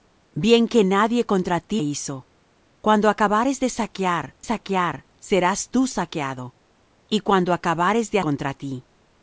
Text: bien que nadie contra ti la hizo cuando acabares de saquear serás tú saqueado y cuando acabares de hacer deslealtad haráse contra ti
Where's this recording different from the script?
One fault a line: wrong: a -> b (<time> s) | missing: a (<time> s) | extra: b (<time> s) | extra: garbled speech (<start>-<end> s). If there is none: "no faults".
missing: la (1.8 s)
extra: saquear (4.4 s)
missing: hacer deslealtad haráse (8.2 s)